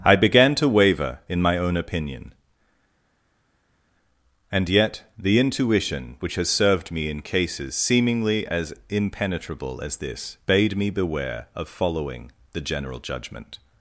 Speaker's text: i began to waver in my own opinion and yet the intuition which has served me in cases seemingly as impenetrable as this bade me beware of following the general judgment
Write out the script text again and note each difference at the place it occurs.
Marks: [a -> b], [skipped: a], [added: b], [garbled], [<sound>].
i began to waver in my own opinion and yet the intuition which has served me in cases seemingly as impenetrable as this bade me beware of following the general judgment